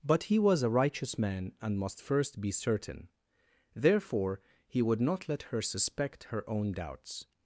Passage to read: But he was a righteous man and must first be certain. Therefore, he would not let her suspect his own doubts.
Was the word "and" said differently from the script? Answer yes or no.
no